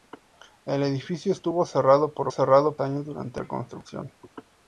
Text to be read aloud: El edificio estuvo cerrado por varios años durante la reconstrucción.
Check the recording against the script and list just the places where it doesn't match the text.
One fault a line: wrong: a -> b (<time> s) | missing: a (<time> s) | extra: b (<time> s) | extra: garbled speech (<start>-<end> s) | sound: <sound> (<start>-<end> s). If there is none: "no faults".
wrong: varios -> cerrado (2.3 s)
missing: la (3.4 s)